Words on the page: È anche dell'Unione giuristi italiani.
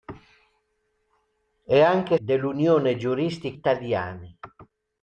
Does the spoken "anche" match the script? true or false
true